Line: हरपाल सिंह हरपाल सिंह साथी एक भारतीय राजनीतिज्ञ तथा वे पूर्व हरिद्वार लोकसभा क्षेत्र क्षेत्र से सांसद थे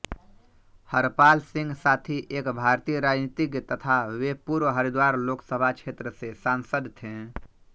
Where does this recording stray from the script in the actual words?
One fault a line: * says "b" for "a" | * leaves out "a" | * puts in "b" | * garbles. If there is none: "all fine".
* leaves out "हरपाल सिंह"
* leaves out "क्षेत्र"